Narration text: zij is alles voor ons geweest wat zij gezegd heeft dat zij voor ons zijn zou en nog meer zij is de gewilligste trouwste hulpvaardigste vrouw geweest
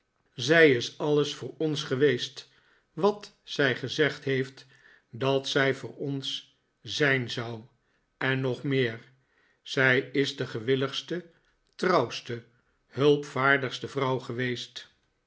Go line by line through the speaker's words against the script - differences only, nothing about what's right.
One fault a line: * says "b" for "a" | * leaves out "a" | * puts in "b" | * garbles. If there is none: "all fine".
all fine